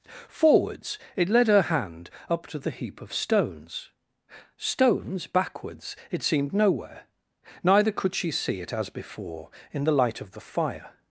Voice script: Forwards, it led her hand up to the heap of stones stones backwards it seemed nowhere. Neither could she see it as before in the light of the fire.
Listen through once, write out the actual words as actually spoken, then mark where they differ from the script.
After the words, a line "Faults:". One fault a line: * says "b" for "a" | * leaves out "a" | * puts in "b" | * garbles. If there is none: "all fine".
Forwards, it led her hand up to the heap of stones stones backwards it seemed nowhere. Neither could she see it as before in the light of the fire.
Faults:
all fine